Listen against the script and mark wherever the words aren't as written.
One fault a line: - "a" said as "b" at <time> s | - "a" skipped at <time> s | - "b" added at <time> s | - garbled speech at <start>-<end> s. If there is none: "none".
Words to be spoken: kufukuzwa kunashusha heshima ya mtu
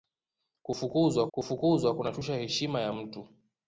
- "kufukuzwa" added at 1.3 s